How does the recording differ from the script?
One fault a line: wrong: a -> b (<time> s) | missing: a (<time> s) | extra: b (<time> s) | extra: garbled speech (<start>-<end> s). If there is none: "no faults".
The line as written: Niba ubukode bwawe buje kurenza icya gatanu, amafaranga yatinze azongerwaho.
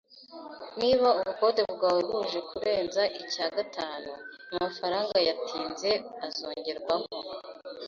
no faults